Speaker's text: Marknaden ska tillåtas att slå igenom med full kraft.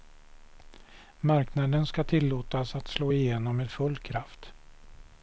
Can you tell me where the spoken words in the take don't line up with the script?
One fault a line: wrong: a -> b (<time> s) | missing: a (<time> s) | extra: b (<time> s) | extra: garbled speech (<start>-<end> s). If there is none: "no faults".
no faults